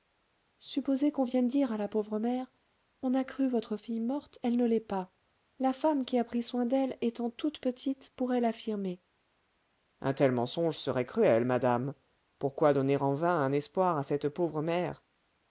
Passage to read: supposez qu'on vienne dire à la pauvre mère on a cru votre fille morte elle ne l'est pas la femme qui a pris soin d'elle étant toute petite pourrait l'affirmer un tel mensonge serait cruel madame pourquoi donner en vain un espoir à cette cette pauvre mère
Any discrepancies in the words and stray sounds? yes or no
yes